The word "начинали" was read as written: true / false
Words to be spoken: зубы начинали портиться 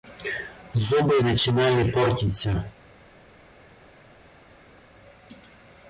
true